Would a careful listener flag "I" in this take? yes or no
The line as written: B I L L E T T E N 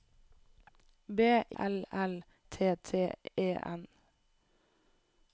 yes